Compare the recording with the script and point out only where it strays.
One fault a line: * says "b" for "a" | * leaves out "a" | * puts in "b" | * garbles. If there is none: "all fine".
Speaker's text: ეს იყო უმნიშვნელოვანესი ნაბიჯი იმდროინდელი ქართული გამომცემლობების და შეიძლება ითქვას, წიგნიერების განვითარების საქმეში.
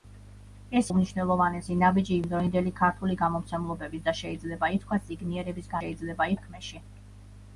* leaves out "იყო"
* says "შეიძლება" for "განვითარების"